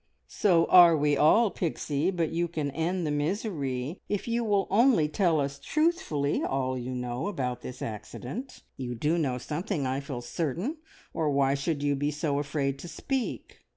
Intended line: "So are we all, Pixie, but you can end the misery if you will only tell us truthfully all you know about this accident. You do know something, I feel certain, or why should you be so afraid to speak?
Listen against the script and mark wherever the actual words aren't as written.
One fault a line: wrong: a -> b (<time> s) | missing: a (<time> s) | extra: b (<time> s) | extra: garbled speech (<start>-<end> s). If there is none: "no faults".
no faults